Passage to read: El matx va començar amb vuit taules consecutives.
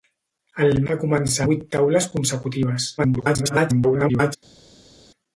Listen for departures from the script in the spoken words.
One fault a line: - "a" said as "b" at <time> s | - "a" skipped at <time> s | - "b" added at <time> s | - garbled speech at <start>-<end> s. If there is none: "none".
- "matx" skipped at 0.8 s
- "amb" skipped at 1.5 s
- garbled speech at 3.0-4.4 s